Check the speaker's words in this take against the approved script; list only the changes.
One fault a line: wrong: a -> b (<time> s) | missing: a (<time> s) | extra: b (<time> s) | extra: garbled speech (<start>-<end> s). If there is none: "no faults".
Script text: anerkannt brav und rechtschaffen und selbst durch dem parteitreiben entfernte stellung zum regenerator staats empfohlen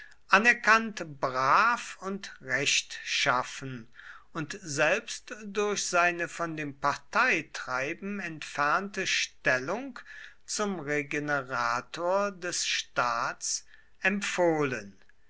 extra: seine von (5.8 s)
extra: des (12.3 s)